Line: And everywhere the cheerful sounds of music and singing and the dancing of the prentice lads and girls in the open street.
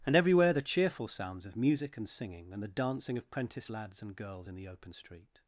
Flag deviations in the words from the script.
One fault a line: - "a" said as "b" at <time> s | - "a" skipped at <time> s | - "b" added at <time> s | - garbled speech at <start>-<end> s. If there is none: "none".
- "the" skipped at 3.3 s